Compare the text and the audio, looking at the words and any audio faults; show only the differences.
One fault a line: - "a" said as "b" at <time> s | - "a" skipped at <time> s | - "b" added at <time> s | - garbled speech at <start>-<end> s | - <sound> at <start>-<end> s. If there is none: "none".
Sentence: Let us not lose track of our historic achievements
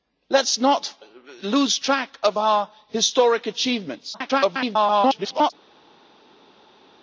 - garbled speech at 4.1-5.5 s